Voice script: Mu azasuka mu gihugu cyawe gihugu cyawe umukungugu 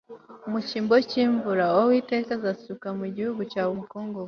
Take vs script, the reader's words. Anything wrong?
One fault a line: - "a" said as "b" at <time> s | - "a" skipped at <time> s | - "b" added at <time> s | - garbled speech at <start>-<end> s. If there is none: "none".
- "cyimbo cyimvura Uwiteka" added at 0.7 s
- "gihugu cyawe" skipped at 3.7 s